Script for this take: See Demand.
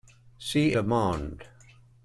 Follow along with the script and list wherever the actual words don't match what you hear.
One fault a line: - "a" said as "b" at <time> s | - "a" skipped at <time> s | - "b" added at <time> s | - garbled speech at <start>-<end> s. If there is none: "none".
none